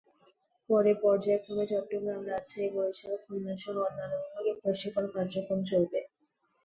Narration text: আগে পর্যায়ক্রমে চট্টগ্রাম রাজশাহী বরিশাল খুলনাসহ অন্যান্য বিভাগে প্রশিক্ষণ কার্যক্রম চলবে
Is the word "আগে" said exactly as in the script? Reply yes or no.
no